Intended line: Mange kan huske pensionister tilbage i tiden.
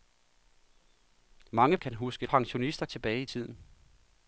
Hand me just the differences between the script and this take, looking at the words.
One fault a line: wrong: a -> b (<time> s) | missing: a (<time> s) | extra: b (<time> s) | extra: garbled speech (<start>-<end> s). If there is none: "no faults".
no faults